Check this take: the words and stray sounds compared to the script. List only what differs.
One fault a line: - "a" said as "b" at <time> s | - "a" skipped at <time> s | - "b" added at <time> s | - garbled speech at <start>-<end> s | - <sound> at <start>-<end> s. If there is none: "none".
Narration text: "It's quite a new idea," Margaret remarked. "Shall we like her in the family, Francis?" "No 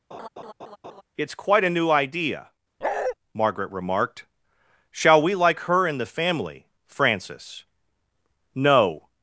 - laugh at 0.1-1.0 s
- bark at 2.8-3.2 s